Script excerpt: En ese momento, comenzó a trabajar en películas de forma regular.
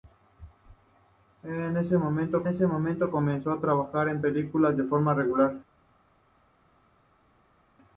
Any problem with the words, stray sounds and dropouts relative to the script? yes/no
yes